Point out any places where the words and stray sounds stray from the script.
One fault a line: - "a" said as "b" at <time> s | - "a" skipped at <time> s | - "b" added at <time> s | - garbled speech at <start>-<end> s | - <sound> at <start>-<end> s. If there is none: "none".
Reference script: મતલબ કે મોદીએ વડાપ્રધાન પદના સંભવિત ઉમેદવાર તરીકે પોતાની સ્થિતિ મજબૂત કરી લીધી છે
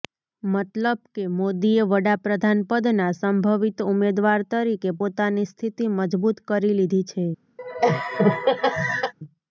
- laugh at 7.6-9.1 s